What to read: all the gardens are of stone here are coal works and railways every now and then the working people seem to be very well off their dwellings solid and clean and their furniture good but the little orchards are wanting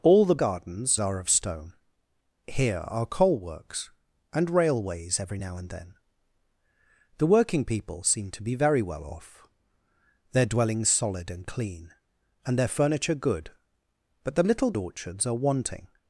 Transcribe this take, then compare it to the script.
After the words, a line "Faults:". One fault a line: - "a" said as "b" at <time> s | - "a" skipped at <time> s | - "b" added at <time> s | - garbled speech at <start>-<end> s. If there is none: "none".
all the gardens are of stone here are coal works and railways every now and then the working people seem to be very well off their dwellings solid and clean and their furniture good but the little orchards are wanting
Faults:
none